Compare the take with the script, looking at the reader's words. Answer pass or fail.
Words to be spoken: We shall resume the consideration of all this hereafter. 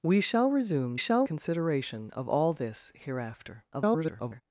fail